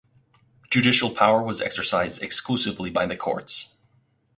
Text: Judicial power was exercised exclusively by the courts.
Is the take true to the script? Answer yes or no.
yes